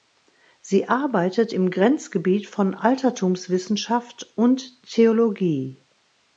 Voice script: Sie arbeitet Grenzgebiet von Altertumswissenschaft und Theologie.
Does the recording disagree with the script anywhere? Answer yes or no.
yes